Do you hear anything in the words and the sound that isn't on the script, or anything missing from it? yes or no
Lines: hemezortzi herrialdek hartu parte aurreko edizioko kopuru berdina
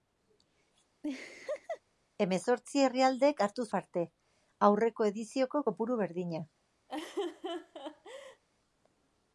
yes